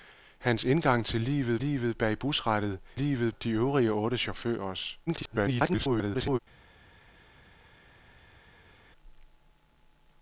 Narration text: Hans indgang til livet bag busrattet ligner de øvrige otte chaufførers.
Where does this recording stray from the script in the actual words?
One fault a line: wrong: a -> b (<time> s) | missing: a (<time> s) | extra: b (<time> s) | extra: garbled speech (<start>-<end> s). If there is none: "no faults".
extra: livet (1.6 s)
wrong: ligner -> livet (2.9 s)
extra: garbled speech (5.1-6.4 s)